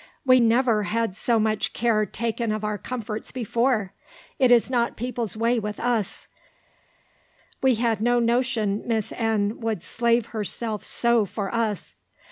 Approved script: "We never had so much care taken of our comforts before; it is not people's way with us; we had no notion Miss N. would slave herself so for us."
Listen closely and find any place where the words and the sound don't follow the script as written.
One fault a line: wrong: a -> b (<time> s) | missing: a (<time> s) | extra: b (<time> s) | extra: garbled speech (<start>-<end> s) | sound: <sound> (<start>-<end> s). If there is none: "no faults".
no faults